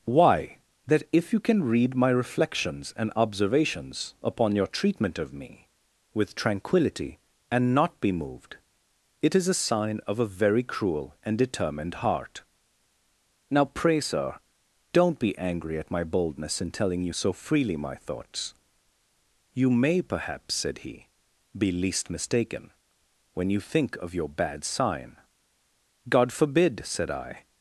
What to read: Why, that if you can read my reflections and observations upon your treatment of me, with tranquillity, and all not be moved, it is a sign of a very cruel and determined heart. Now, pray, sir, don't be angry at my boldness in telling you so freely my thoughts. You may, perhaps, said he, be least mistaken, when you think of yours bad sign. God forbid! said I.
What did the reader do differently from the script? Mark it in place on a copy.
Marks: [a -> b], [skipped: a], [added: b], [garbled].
Why, that if you can read my reflections and observations upon your treatment of me, with tranquillity, and [skipped: all] not be moved, it is a sign of a very cruel and determined heart. Now, pray, sir, don't be angry at my boldness in telling you so freely my thoughts. You may, perhaps, said he, be least mistaken, when you think of [yours -> your] bad sign. God forbid! said I.